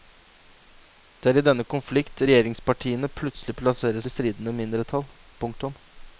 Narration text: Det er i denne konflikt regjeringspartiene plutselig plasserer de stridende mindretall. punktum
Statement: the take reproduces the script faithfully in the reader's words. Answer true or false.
true